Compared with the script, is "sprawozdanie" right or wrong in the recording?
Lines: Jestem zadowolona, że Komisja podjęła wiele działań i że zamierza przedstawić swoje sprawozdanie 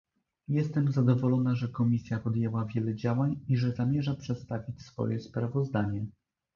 right